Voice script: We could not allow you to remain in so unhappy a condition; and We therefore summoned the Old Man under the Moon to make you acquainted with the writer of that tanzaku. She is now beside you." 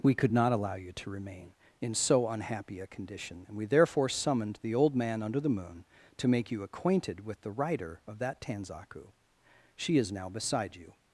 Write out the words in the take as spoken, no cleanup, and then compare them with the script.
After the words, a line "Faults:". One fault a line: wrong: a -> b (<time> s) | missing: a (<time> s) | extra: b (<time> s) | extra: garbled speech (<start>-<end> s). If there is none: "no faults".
We could not allow you to remain in so unhappy a condition; and We therefore summoned the Old Man under the Moon to make you acquainted with the writer of that tanzaku. She is now beside you."
Faults:
no faults